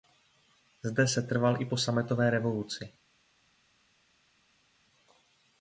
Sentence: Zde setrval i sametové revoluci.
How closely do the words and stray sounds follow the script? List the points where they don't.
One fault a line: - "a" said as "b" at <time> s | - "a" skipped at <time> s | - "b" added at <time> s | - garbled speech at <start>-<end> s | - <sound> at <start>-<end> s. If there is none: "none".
- "po" added at 1.6 s